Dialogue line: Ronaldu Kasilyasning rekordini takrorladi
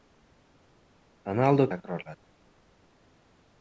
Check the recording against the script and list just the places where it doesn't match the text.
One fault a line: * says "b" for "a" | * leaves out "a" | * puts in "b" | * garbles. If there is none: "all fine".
* leaves out "Kasilyasning rekordini"